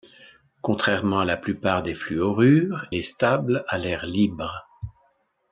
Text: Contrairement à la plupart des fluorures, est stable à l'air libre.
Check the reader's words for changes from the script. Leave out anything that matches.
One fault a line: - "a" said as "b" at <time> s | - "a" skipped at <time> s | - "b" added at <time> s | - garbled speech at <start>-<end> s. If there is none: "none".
none